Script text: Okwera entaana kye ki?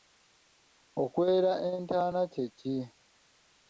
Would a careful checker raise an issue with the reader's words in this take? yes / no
no